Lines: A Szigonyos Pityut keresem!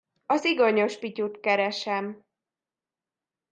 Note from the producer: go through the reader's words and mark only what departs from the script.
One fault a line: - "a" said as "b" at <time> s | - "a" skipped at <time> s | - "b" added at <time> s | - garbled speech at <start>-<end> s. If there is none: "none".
none